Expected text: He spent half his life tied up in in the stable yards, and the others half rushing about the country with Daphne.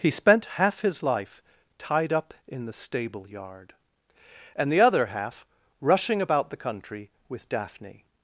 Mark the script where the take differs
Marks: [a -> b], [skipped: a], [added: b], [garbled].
He spent half his life tied up in [skipped: in] the stable [yards, -> yard] and the [others -> other] half rushing about the country with Daphne.